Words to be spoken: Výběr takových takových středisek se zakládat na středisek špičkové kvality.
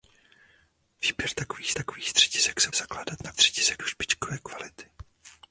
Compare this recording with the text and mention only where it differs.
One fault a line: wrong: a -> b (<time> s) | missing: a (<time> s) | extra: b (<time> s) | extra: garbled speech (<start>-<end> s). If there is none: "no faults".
no faults